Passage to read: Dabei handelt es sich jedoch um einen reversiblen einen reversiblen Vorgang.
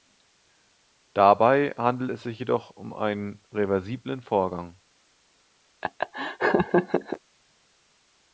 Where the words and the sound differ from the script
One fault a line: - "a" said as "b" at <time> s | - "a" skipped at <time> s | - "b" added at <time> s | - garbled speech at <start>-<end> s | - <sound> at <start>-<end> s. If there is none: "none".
- "einen reversiblen" skipped at 4.2 s
- laugh at 5.8-7.2 s